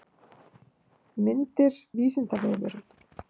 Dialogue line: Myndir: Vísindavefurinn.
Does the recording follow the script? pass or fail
pass